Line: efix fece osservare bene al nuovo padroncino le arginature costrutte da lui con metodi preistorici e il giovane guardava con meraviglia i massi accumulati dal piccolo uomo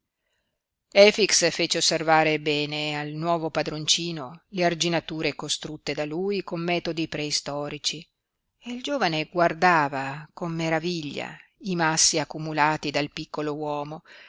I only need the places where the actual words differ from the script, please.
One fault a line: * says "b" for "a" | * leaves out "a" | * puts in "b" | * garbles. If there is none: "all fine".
all fine